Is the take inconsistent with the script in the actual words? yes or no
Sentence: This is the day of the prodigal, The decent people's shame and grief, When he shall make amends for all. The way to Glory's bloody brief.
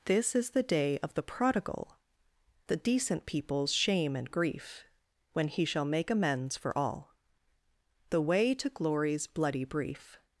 no